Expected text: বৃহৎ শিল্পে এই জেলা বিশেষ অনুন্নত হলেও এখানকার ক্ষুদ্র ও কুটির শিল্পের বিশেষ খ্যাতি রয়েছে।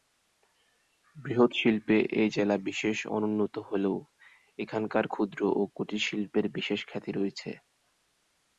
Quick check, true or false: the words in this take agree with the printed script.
true